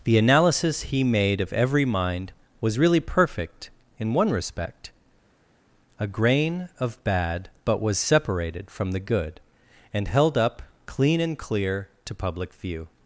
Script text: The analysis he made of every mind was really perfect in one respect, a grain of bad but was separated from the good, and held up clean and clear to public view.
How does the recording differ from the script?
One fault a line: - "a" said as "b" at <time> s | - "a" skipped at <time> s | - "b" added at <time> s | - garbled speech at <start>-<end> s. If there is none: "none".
none